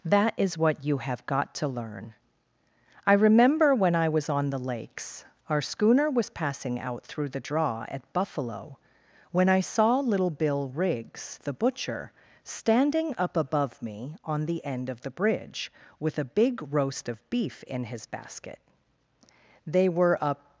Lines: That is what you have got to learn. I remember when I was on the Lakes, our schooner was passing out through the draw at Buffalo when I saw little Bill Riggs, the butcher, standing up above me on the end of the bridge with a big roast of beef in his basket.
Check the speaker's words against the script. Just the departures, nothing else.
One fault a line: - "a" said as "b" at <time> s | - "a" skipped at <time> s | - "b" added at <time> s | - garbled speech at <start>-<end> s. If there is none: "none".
- "They were a" added at 19.6 s